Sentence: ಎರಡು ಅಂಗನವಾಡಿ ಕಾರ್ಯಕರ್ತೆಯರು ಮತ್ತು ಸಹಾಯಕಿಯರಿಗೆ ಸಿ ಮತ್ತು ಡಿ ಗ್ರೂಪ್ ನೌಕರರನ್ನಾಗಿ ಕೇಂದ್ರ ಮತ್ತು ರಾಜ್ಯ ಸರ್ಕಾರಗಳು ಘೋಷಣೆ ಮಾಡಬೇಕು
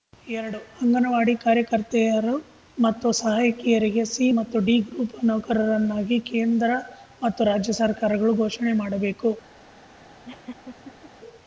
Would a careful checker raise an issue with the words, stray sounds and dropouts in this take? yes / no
yes